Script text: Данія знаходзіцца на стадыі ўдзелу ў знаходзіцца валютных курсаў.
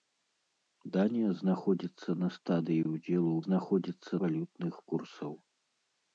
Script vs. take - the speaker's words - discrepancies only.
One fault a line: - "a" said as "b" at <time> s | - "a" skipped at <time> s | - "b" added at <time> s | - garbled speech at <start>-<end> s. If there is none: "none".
none